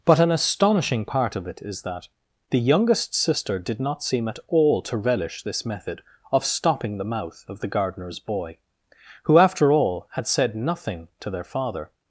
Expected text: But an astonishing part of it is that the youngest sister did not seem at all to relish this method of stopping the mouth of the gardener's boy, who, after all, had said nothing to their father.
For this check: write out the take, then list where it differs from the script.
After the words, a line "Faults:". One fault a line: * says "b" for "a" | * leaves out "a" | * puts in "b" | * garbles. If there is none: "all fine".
But an astonishing part of it is that the youngest sister did not seem at all to relish this method of stopping the mouth of the gardener's boy, who, after all, had said nothing to their father.
Faults:
all fine